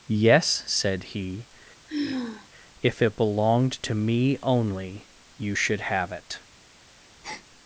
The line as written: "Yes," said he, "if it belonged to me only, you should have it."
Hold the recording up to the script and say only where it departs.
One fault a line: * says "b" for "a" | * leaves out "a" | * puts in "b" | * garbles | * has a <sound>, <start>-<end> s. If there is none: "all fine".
* has a sigh, 1.9-2.5 s
* has a breath, 7.2-7.5 s